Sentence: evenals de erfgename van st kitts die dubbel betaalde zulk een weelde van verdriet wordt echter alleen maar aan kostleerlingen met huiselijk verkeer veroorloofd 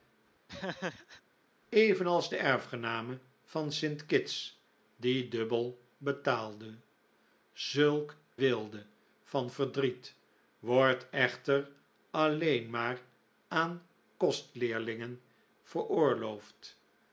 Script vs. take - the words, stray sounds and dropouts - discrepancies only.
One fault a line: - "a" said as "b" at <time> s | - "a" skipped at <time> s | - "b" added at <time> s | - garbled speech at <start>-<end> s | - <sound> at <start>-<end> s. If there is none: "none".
- laugh at 0.5-1.2 s
- "een" skipped at 8.1 s
- "met huiselijk verkeer" skipped at 15.2 s